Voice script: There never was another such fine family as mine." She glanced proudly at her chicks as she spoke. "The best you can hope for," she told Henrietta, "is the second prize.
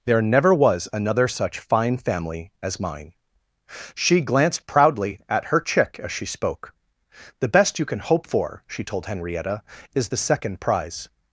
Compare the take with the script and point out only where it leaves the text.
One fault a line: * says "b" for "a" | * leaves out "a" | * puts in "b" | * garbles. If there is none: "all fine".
* says "chick" for "chicks"